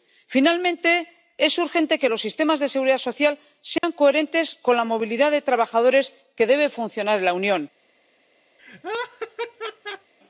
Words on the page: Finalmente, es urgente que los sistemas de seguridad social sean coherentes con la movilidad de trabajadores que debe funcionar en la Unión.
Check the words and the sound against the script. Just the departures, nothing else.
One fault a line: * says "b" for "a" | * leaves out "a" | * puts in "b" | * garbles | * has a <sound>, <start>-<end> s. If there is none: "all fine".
* has a dropout, 3.8-3.8 s
* has a laugh, 8.6-10.1 s